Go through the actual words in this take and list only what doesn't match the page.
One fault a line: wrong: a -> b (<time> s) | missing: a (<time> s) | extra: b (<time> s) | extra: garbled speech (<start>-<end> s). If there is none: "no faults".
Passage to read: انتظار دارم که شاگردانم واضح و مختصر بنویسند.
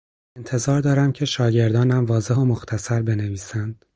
no faults